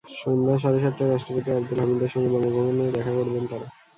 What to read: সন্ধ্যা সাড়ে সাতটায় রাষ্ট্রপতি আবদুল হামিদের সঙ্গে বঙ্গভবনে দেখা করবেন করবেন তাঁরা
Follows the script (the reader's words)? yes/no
no